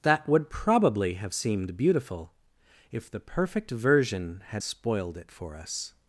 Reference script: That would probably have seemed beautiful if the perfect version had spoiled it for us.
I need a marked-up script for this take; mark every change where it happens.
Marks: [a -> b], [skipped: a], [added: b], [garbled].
That would probably have seemed beautiful if the perfect version had spoiled it for us.